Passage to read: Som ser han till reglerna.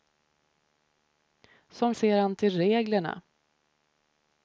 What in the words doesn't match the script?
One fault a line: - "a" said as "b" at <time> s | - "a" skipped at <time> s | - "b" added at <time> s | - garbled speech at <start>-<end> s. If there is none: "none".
none